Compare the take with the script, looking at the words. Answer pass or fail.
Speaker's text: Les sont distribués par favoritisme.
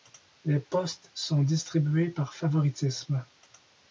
fail